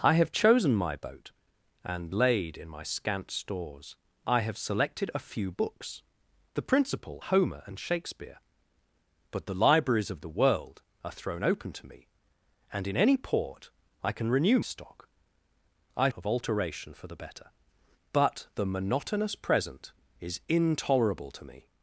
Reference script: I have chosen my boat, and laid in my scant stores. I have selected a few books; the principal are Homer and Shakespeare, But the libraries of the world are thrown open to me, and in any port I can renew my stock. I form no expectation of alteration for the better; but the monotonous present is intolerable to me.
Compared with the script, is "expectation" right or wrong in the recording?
wrong